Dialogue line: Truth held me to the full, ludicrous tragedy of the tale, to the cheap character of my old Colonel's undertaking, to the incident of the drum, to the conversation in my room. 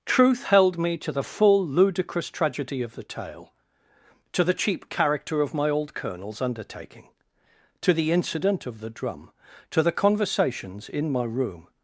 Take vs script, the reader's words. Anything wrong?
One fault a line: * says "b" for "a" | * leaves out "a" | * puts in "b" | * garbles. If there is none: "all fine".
* says "conversations" for "conversation"